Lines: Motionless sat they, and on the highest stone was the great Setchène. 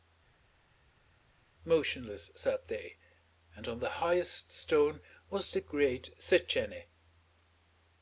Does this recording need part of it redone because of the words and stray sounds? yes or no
no